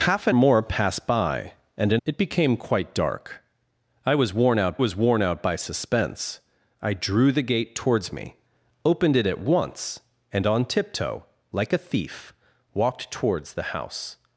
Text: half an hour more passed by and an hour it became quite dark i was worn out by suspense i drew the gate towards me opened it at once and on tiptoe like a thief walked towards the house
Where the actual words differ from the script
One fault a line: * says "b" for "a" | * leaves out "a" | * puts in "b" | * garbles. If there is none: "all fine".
* leaves out "hour"
* leaves out "hour"
* puts in "was worn out"